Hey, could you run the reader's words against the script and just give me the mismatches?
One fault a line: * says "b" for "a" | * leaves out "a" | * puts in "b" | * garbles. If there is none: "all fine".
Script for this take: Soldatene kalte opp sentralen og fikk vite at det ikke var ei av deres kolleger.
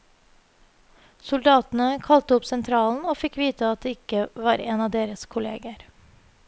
* says "en" for "ei"